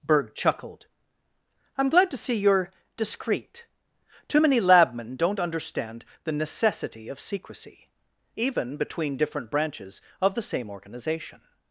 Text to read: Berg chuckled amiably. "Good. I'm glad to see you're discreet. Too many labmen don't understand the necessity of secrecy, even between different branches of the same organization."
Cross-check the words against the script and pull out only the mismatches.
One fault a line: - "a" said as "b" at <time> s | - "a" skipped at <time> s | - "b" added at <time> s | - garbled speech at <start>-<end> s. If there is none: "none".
- "amiably Good" skipped at 0.9 s